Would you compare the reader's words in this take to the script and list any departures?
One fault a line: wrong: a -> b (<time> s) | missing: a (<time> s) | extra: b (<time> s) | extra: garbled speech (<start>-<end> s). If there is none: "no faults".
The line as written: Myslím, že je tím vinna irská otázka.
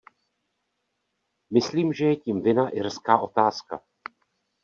no faults